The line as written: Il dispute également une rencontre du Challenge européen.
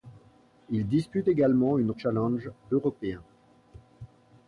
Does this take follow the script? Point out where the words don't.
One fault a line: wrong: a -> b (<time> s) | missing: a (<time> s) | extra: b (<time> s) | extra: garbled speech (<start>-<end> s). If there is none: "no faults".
missing: rencontre du (1.9 s)